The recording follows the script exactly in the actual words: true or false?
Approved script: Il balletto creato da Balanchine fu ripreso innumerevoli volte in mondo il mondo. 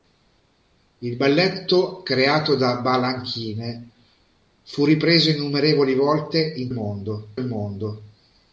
true